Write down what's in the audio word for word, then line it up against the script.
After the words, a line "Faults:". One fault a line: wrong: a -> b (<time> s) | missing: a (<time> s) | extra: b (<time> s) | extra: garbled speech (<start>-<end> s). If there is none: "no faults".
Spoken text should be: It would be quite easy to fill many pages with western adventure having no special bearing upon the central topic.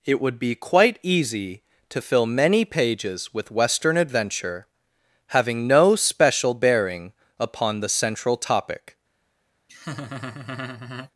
It would be quite easy to fill many pages with western adventure having no special bearing upon the central topic.
Faults:
no faults